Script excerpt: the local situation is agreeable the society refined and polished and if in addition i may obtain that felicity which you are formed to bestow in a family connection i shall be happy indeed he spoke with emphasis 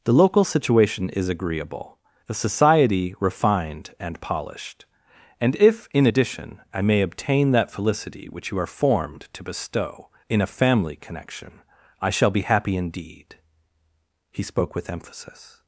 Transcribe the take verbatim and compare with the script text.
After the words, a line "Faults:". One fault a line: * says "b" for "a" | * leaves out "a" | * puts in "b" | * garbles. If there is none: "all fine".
the local situation is agreeable the society refined and polished and if in addition i may obtain that felicity which you are formed to bestow in a family connection i shall be happy indeed he spoke with emphasis
Faults:
all fine